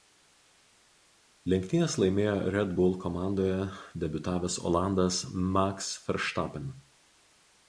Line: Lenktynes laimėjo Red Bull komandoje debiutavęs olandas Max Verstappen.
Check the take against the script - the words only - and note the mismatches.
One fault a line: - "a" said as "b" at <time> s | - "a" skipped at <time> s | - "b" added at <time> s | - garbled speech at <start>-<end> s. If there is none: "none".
none